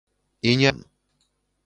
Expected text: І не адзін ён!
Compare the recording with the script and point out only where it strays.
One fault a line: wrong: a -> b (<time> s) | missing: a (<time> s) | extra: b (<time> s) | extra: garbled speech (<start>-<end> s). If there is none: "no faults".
missing: адзін (0.7 s)